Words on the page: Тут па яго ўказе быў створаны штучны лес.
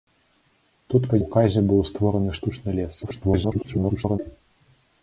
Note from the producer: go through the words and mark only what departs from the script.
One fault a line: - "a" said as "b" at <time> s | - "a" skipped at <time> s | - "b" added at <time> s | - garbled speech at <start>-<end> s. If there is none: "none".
- "яго" skipped at 1.2 s
- garbled speech at 3.0-4.2 s